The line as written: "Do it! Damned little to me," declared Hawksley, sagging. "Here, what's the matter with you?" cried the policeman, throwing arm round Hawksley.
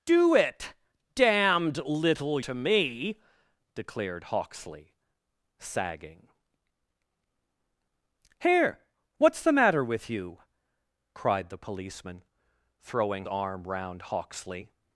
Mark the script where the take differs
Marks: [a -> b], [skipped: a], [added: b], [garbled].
"Do it! Damned little to me," declared Hawksley, sagging. "Here, what's the matter with you?" cried the policeman, throwing arm round Hawksley.